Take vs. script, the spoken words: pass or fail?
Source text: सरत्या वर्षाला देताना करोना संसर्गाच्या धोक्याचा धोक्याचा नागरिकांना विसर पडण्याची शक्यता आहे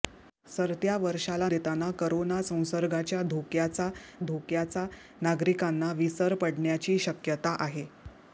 pass